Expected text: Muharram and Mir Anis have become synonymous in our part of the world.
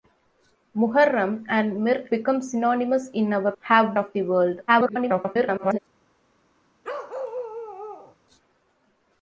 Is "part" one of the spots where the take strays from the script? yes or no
yes